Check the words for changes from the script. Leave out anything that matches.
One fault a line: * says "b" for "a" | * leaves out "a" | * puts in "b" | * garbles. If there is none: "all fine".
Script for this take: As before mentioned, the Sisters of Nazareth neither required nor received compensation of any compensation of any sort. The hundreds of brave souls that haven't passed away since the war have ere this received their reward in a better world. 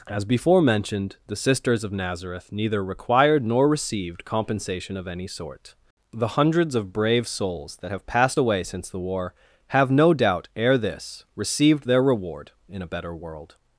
* leaves out "compensation of any"
* says "have" for "haven't"
* puts in "no doubt"